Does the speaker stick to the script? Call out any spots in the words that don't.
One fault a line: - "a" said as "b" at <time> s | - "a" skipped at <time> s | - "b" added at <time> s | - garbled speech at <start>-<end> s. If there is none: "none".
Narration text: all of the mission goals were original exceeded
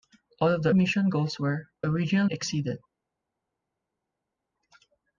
none